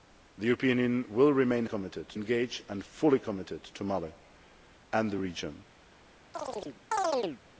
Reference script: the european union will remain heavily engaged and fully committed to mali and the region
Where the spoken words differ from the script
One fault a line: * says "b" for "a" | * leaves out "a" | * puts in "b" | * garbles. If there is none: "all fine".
* says "committed" for "heavily"